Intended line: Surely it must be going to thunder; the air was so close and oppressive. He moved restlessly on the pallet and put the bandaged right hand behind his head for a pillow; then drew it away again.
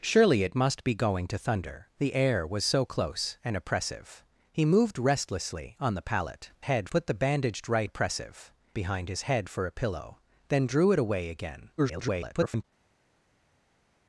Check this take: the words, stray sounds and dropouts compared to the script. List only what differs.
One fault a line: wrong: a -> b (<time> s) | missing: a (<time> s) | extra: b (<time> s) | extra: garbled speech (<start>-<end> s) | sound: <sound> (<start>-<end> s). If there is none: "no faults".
wrong: and -> head (6.6 s)
wrong: hand -> oppressive (7.8 s)
extra: garbled speech (11.8-12.6 s)